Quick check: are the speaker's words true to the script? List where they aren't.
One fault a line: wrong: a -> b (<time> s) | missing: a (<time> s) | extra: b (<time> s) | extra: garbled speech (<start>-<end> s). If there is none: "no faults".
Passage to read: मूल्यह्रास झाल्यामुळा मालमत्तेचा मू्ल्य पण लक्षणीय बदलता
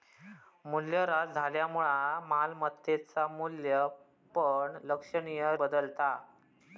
no faults